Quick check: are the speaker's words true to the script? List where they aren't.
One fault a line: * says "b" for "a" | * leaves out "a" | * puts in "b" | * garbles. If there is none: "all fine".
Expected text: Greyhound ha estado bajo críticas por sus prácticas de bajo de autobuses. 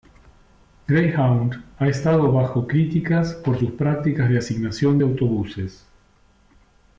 * says "asignación" for "bajo"